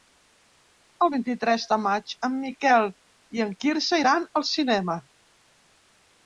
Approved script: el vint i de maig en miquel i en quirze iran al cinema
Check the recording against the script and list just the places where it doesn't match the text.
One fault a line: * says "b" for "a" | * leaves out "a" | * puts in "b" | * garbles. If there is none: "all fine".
* puts in "tres"